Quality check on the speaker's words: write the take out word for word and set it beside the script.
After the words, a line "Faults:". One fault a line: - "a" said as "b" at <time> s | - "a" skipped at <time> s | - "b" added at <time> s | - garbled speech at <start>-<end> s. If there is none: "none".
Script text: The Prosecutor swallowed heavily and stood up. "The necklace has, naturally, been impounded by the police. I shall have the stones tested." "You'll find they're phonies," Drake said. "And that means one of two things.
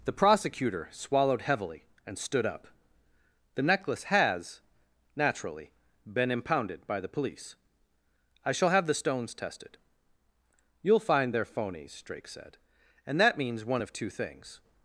The Prosecutor swallowed heavily and stood up. "The necklace has, naturally, been impounded by the police. I shall have the stones tested." "You'll find they're phonies," Drake said. "And that means one of two things.
Faults:
none